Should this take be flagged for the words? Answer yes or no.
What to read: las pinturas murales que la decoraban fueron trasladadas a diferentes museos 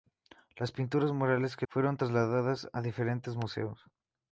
yes